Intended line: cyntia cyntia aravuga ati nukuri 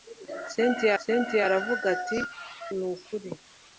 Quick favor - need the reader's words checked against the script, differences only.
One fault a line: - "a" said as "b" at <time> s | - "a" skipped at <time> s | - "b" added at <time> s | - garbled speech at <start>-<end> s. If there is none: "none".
none